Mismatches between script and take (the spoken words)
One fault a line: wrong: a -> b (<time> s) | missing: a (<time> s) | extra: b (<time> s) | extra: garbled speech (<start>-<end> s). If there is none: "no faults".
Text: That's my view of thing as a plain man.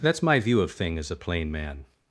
no faults